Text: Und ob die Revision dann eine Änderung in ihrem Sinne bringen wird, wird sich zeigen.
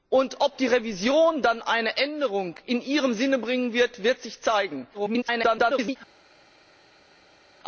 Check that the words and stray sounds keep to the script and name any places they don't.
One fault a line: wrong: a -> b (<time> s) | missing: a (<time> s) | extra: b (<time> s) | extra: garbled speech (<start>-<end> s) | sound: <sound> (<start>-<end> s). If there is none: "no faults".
extra: garbled speech (4.9-6.0 s)